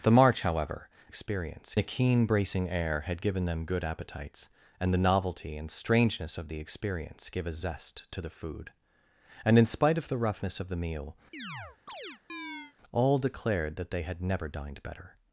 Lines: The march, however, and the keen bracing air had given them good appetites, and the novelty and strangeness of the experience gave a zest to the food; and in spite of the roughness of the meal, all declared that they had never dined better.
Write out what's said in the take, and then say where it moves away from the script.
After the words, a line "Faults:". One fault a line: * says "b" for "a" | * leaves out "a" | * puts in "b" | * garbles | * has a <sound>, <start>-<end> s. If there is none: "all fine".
The march, however, experience the keen bracing air had given them good appetites, and the novelty and strangeness of the experience gave a zest to the food; and in spite of the roughness of the meal, all declared that they had never dined better.
Faults:
* says "experience" for "and"
* has a chirp, 11.3-12.7 s